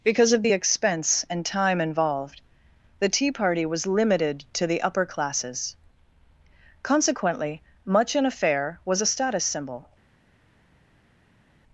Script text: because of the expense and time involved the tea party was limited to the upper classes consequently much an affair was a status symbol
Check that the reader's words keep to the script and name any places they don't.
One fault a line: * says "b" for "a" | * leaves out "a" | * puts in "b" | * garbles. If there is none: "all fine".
all fine